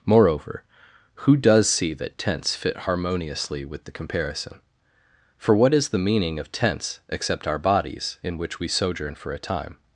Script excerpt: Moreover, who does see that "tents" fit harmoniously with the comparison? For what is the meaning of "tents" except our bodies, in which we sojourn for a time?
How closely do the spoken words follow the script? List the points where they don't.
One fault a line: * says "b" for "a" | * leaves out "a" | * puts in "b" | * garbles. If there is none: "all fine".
all fine